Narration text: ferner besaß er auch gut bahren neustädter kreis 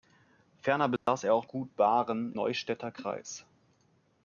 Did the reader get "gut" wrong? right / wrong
right